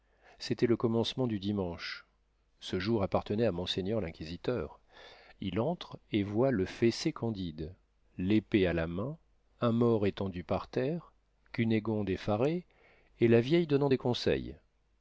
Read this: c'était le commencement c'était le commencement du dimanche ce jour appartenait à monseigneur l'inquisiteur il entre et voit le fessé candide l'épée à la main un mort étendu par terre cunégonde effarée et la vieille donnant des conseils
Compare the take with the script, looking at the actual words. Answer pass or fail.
fail